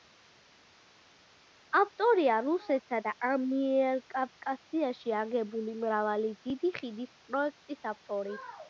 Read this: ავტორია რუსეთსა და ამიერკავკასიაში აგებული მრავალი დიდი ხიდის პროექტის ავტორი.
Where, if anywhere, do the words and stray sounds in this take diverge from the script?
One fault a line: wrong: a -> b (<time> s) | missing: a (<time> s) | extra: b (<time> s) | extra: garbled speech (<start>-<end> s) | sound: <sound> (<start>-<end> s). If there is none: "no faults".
no faults